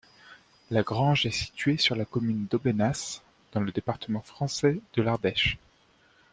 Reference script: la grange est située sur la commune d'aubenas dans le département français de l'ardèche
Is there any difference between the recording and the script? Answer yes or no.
no